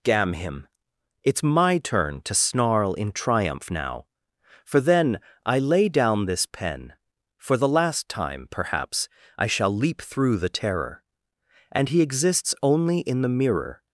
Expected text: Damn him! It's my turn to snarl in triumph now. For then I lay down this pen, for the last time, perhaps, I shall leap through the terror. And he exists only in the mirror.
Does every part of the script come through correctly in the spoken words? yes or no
yes